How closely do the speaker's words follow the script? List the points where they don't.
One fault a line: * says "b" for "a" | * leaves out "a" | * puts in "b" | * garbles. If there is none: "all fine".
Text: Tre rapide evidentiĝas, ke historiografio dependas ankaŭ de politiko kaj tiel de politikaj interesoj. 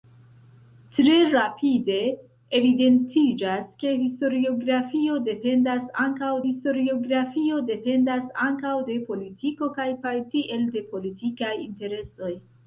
* puts in "historiografio dependas ankaŭ"
* puts in "kaj"